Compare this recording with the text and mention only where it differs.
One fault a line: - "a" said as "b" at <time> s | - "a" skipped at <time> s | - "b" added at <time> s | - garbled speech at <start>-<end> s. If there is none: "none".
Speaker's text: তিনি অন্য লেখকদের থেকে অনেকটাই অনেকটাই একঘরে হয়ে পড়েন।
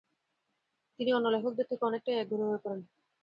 - "অনেকটাই" skipped at 2.2 s